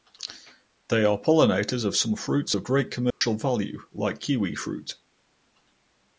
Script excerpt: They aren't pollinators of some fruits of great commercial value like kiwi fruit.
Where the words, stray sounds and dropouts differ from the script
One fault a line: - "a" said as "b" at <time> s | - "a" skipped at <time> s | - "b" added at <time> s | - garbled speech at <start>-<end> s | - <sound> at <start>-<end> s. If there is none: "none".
- "aren't" said as "are" at 1.1 s
- dropout at 3.1-3.2 s